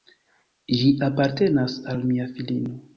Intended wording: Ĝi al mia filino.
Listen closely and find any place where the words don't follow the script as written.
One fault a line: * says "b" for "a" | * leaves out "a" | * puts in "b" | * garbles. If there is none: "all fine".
* puts in "apartenas"